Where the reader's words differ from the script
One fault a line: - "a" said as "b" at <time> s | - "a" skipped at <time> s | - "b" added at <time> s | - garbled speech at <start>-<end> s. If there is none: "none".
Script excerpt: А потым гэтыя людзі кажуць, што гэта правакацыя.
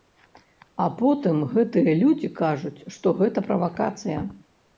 none